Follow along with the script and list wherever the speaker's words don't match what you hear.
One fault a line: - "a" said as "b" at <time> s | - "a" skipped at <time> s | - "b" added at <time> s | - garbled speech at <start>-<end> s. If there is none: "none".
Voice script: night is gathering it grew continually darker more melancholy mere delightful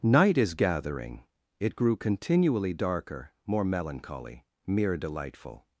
none